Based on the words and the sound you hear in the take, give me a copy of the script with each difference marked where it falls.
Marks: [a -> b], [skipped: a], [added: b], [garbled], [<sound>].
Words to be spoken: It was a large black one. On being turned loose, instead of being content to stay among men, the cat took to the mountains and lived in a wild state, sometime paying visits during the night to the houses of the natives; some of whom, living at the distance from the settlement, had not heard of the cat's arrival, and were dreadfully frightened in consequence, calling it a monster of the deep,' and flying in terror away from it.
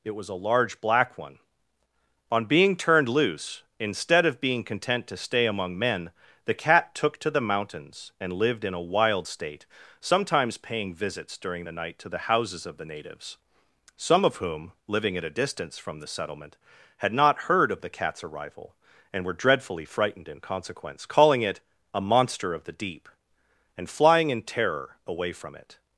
It was a large black one. On being turned loose, instead of being content to stay among men, the cat took to the mountains and lived in a wild state, [sometime -> sometimes] paying visits during the night to the houses of the natives; some of whom, living at [the -> a] distance from the settlement, had not heard of the cat's arrival, and were dreadfully frightened in consequence, calling it a monster of the deep,' and flying in terror away from it.